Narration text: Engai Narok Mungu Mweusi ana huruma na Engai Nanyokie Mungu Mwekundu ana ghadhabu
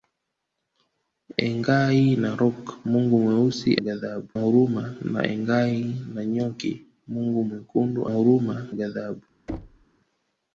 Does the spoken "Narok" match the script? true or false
true